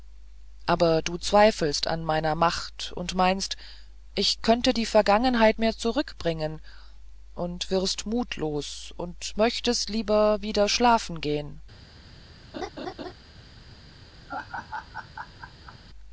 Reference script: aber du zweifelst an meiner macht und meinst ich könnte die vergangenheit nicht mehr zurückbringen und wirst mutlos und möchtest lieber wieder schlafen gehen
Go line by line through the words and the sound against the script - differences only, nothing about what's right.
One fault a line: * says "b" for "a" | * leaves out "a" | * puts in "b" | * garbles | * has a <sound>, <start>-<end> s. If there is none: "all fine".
* leaves out "nicht"
* has a laugh, 12.5-13.1 s
* has a laugh, 14.3-15.8 s